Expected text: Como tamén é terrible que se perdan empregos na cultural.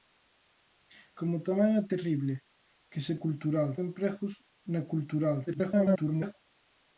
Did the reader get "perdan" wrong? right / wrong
wrong